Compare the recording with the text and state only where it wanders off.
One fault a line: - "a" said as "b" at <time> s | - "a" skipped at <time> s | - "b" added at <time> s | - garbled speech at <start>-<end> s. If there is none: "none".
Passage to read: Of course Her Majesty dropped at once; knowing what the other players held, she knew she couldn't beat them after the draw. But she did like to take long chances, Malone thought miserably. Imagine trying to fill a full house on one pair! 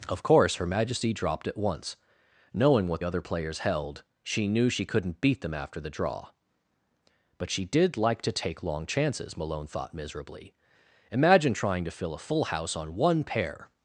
- "the" skipped at 3.0 s